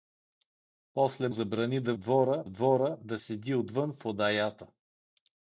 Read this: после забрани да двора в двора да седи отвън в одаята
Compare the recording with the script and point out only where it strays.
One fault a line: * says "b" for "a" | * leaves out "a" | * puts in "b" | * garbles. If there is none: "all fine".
all fine